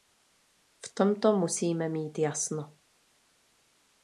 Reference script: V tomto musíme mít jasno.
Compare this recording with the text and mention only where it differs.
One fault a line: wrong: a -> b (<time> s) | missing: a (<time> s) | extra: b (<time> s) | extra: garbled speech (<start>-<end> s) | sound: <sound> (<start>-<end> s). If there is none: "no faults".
no faults